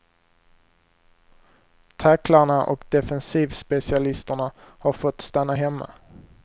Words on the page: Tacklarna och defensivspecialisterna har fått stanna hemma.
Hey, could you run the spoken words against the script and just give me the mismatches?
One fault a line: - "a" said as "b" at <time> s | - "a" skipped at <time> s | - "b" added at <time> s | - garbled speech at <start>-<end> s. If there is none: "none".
none